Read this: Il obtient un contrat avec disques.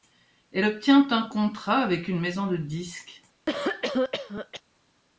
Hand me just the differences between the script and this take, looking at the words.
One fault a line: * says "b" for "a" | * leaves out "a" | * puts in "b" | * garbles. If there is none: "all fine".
* says "Elle" for "Il"
* puts in "une maison de"